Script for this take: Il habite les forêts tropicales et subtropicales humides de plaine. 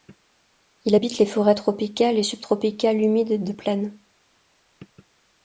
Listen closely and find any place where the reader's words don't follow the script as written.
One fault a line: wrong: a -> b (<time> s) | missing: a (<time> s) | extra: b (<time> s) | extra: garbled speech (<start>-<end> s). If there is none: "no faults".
no faults